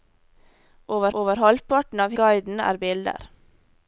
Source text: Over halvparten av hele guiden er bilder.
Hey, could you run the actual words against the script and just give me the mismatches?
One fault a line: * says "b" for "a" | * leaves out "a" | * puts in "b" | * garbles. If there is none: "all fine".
* puts in "over"
* leaves out "hele"